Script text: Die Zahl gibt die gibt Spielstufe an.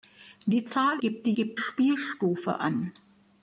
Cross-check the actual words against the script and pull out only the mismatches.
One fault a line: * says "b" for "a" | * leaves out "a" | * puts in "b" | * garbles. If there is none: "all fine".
all fine